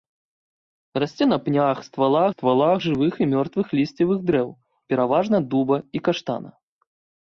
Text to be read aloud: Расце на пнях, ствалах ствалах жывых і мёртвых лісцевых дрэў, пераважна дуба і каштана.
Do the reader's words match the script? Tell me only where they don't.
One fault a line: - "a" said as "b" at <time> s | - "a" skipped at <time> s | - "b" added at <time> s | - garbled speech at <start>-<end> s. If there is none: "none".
none